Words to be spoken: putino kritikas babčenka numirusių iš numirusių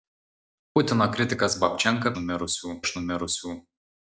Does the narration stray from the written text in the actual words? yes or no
no